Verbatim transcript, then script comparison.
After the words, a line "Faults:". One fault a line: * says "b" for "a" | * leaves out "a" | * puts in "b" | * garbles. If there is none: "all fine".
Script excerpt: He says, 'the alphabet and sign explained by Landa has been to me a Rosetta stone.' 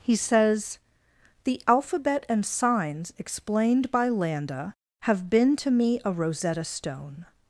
He says, 'the alphabet and signs explained by Landa have been to me a Rosetta stone.'
Faults:
* says "signs" for "sign"
* says "have" for "has"